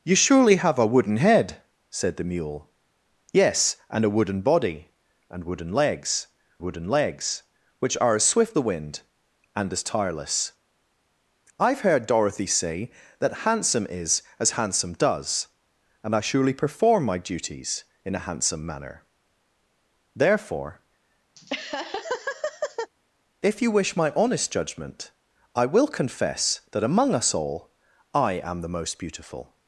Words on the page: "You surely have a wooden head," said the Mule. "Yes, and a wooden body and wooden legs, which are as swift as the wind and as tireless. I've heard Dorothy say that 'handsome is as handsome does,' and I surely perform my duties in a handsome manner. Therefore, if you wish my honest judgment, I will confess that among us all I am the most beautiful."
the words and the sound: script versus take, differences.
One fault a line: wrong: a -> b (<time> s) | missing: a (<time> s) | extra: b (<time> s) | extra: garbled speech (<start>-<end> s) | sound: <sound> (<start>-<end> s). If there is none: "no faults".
extra: wooden legs (6.6 s)
missing: as (8.6 s)
sound: laugh (21.4-22.9 s)